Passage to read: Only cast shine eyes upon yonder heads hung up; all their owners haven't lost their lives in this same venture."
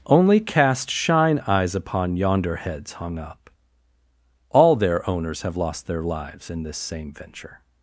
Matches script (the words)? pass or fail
fail